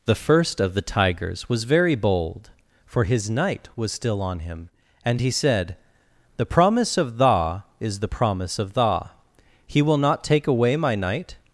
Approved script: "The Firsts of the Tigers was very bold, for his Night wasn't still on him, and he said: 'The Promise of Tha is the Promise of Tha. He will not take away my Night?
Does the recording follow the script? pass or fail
fail